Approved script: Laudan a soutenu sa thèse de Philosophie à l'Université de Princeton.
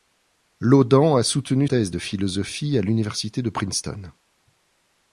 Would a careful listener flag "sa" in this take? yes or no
yes